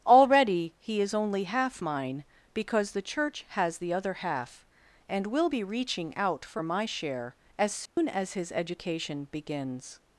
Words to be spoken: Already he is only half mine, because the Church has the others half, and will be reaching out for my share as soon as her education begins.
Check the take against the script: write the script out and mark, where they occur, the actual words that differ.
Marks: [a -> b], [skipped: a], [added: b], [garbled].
Already he is only half mine, because the Church has the [others -> other] half, and will be reaching out for my share as soon as [her -> his] education begins.